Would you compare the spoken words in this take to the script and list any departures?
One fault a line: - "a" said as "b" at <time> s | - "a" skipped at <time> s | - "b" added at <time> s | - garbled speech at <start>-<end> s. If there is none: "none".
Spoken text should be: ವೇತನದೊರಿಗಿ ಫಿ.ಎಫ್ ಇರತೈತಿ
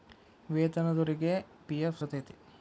none